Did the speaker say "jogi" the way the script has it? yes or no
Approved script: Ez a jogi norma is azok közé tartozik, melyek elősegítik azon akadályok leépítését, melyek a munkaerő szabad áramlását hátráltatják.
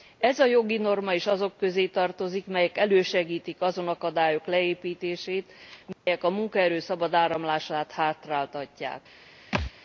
yes